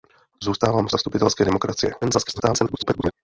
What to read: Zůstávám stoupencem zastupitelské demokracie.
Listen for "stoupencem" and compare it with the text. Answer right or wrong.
wrong